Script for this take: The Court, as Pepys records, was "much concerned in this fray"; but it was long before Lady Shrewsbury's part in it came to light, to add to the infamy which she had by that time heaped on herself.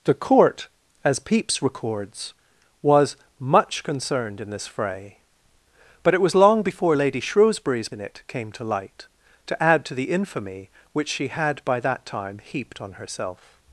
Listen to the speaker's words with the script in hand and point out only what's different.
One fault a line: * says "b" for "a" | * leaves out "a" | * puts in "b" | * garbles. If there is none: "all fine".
* leaves out "part"